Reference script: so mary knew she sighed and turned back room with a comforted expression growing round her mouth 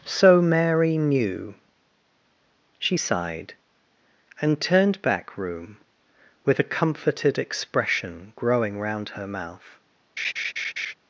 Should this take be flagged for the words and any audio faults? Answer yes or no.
yes